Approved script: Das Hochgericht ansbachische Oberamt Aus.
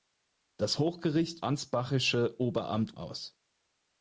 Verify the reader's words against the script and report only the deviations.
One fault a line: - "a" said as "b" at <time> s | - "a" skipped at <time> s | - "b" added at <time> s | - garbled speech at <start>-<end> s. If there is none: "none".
none